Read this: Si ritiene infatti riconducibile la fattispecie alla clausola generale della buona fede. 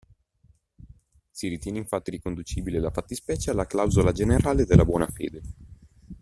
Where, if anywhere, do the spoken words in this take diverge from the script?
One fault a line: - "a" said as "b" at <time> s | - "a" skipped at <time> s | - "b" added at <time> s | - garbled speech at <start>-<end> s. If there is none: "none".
none